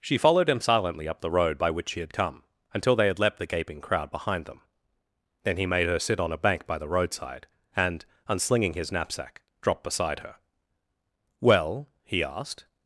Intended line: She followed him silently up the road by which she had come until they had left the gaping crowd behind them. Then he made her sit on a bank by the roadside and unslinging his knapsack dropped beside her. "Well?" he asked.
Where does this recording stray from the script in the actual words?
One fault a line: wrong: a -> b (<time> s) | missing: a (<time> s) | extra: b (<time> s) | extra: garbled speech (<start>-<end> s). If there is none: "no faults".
wrong: left -> leapt (3.2 s)